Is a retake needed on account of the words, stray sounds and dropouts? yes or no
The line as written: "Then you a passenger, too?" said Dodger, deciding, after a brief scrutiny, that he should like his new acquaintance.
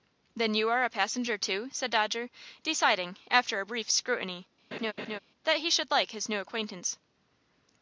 yes